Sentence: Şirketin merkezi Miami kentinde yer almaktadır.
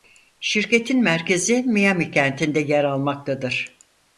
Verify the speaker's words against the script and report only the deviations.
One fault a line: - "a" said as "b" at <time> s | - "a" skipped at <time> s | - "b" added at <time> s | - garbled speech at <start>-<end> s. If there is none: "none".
none